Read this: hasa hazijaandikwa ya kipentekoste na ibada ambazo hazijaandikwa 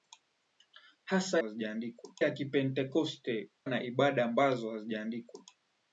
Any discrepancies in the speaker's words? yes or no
no